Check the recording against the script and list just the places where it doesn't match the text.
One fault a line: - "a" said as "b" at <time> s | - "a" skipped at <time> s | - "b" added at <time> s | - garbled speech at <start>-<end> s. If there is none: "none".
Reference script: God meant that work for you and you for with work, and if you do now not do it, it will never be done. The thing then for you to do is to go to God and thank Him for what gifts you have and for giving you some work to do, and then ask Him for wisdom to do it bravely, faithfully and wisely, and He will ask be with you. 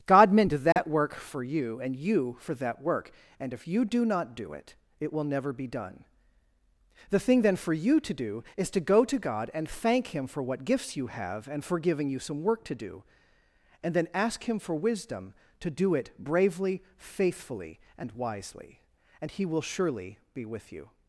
- "with" said as "that" at 2.5 s
- "now" skipped at 4.0 s
- "ask" said as "surely" at 19.6 s